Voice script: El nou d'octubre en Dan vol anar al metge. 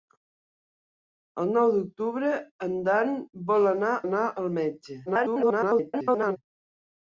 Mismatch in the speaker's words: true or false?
true